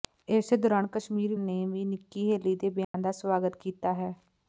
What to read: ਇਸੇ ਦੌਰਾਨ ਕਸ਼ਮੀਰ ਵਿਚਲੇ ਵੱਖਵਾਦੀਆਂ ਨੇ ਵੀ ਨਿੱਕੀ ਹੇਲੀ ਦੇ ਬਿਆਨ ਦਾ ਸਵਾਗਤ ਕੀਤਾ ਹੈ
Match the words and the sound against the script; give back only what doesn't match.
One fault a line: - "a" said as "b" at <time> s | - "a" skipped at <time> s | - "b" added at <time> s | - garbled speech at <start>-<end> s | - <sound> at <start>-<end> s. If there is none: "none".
- "ਵਿਚਲੇ ਵੱਖਵਾਦੀਆਂ" skipped at 1.4 s
- dropout at 2.8-2.9 s